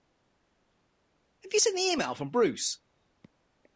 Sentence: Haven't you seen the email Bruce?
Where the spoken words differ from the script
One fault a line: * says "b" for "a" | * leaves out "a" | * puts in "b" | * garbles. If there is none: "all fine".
* says "Have" for "Haven't"
* puts in "from"